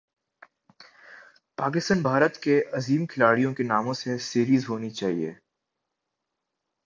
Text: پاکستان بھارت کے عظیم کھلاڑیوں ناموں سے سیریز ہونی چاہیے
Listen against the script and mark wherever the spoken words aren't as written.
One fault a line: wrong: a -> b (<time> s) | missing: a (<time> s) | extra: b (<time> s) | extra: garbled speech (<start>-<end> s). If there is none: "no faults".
extra: کے (3.5 s)